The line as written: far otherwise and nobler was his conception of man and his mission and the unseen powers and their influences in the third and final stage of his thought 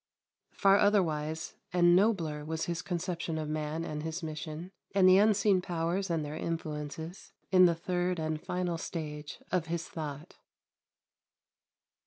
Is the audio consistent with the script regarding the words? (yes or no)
yes